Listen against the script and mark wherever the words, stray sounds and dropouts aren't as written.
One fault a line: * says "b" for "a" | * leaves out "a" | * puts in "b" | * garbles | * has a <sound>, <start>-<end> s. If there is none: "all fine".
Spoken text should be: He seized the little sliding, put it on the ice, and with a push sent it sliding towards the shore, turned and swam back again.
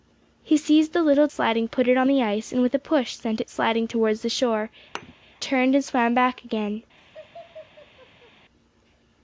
* has a thud, 5.0-5.1 s
* has a laugh, 7.0-8.3 s